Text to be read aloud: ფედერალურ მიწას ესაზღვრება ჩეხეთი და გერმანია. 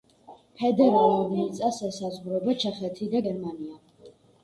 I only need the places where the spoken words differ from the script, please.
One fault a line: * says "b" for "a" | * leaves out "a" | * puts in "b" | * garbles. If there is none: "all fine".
all fine